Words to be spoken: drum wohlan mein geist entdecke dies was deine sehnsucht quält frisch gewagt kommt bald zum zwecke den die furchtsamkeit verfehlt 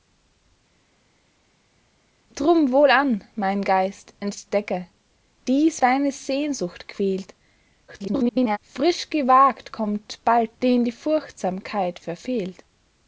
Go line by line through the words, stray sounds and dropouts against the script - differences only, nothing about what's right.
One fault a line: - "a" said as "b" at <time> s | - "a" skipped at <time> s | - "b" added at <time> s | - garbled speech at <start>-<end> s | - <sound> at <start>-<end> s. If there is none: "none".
- "was" skipped at 5.8 s
- garbled speech at 7.9-8.6 s
- "zum zwecke" skipped at 10.6 s